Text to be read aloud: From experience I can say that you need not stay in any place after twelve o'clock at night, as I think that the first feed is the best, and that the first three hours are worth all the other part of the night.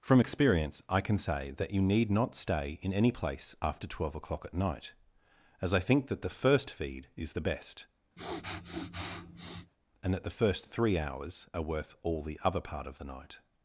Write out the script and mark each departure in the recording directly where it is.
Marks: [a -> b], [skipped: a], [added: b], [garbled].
From experience I can say that you need not stay in any place after twelve o'clock at night, as I think that the first feed is the best, and that the first three hours are worth all the other part of the night.